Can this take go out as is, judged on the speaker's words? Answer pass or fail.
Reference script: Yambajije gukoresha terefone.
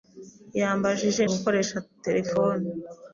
pass